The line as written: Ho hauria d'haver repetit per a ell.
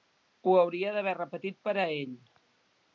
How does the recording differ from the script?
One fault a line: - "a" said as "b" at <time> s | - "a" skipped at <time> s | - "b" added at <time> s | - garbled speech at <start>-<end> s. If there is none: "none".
none